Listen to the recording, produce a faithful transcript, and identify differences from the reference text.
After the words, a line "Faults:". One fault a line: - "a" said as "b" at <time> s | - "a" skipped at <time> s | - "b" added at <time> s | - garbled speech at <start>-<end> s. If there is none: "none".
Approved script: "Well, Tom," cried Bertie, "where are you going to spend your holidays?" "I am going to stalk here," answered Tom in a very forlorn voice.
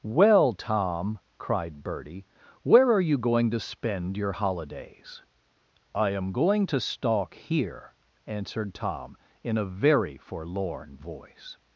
"Well, Tom," cried Bertie, "where are you going to spend your holidays?" "I am going to stalk here," answered Tom in a very forlorn voice.
Faults:
none